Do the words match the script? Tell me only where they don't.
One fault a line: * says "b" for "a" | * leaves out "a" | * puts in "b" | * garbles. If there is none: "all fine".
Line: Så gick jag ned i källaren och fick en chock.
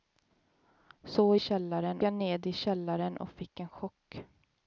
* says "källaren" for "gick"